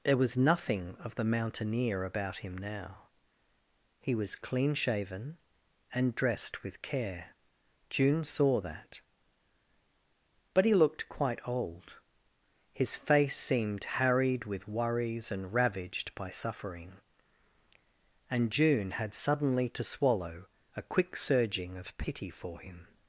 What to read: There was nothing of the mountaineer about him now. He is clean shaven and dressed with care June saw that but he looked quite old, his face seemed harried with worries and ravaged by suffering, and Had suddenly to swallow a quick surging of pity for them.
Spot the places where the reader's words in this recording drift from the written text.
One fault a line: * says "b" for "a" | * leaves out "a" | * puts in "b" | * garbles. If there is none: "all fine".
* says "was" for "is"
* puts in "June"
* says "him" for "them"